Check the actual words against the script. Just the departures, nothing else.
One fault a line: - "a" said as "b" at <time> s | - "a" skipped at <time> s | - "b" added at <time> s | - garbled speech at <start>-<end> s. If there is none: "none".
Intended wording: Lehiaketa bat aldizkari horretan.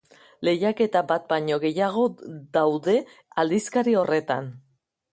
- "baino gehiago daude" added at 1.3 s